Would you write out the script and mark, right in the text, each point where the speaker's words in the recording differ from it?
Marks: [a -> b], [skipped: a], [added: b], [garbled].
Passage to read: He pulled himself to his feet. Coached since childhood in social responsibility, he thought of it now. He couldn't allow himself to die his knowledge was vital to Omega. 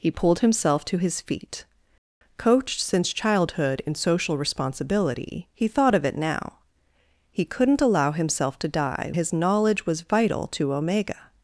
He pulled himself to his feet. Coached since childhood in social responsibility, he thought of it now. He couldn't allow himself to die his knowledge was vital to Omega.